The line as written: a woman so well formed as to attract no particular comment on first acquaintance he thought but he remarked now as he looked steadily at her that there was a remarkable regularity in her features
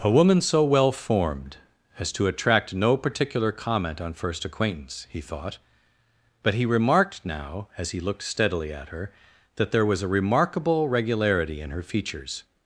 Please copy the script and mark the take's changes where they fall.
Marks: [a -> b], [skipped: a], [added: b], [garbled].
a woman so well formed as to attract no particular comment on first acquaintance he thought but he remarked now as he looked steadily at her that there was a remarkable regularity in her features